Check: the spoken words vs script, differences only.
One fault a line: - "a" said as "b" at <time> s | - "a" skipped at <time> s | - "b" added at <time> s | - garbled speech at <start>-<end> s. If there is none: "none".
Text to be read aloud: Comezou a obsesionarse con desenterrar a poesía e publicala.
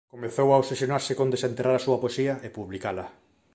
- "súa" added at 1.9 s